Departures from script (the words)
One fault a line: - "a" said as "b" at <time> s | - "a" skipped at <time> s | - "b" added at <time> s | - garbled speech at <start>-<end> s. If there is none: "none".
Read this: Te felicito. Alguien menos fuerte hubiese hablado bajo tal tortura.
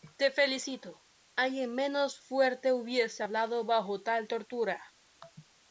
none